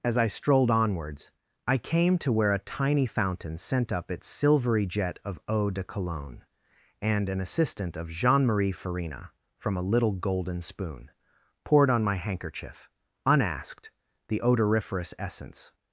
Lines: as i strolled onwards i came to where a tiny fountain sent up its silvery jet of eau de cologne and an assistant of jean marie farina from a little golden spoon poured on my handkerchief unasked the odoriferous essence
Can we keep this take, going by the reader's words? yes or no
yes